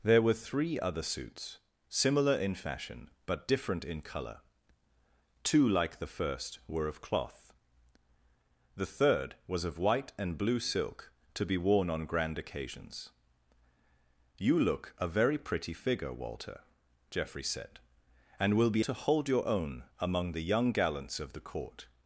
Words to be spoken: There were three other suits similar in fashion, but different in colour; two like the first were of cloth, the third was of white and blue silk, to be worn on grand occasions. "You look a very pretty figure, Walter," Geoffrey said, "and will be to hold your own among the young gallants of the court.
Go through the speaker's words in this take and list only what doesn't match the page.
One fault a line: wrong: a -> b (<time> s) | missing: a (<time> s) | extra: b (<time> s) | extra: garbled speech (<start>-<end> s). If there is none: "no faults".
no faults